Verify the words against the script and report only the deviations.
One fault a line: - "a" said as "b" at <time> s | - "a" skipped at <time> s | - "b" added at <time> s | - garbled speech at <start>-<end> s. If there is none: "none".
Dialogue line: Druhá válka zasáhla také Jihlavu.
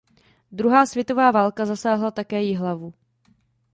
- "světová" added at 0.8 s